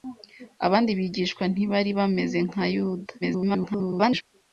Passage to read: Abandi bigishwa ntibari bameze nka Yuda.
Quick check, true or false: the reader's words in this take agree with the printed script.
false